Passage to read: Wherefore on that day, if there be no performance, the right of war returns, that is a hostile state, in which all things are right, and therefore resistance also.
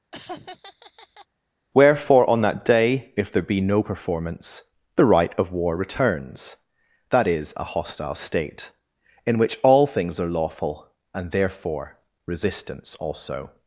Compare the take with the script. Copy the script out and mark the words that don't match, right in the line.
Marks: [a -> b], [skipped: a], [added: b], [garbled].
Wherefore on that day, if there be no performance, the right of war returns, that is a hostile state, in which all things are [right, -> lawful] and therefore resistance also.